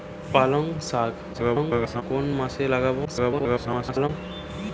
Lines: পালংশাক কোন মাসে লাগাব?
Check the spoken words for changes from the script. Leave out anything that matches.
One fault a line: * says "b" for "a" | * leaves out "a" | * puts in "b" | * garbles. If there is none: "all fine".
* garbles
* garbles